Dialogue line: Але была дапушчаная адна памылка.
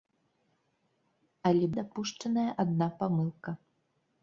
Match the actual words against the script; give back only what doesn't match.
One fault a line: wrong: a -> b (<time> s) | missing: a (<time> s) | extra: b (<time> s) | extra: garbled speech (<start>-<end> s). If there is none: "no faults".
missing: была (1.6 s)